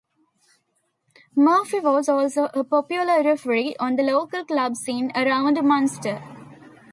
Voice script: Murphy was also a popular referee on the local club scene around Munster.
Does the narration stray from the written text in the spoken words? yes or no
no